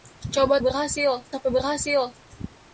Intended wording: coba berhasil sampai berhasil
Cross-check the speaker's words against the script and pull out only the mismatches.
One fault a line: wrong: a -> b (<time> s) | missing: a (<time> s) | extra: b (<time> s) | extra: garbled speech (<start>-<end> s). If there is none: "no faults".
no faults